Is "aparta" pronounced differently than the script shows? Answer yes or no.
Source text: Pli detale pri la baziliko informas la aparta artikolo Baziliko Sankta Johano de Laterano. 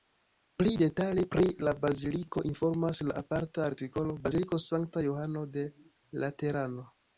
no